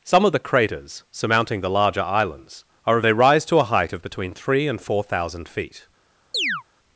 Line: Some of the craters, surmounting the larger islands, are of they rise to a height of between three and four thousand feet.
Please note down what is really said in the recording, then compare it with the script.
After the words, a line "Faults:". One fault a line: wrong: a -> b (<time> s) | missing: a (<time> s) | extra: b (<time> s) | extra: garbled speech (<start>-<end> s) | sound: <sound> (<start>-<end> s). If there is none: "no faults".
Some of the craters, surmounting the larger islands, are of they rise to a height of between three and four thousand feet.
Faults:
sound: chirp (6.3-6.6 s)